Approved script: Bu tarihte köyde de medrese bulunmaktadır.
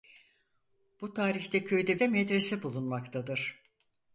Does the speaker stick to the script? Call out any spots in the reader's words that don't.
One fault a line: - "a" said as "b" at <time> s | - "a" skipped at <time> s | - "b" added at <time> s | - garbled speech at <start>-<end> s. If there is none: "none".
none